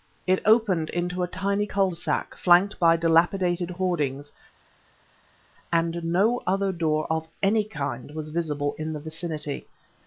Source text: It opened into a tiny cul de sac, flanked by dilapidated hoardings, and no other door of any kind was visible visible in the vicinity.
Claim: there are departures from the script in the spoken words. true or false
true